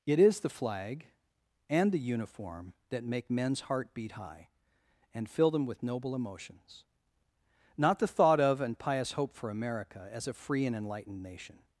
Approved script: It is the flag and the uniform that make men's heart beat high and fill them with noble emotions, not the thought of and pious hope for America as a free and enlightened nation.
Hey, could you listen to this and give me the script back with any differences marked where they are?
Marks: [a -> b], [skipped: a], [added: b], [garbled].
It is the flag and the uniform that make men's heart beat high and fill them with noble emotions, not the thought of and pious hope for America as a free and enlightened nation.